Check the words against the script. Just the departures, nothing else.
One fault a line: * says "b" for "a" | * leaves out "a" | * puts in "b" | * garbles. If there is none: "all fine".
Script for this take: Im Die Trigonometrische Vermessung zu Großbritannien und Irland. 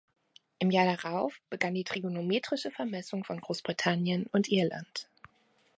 * puts in "Jahr darauf begann"
* says "von" for "zu"